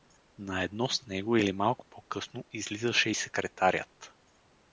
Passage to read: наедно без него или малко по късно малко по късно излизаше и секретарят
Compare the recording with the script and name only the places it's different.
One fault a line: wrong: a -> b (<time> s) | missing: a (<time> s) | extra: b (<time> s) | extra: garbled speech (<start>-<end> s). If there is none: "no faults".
wrong: без -> с (0.9 s)
missing: малко по късно (2.4 s)